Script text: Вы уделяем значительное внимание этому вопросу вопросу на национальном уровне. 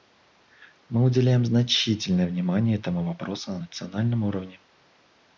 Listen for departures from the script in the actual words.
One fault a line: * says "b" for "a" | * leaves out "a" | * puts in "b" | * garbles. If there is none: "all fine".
* says "Мы" for "Вы"
* leaves out "вопросу"